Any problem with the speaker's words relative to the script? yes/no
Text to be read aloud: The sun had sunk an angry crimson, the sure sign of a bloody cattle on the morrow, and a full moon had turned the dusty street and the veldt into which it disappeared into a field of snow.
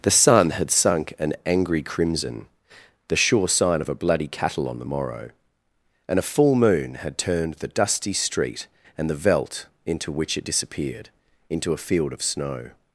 no